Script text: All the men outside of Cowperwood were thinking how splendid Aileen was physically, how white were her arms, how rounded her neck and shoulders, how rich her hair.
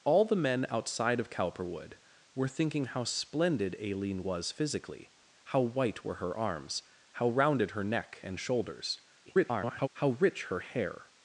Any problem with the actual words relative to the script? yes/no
yes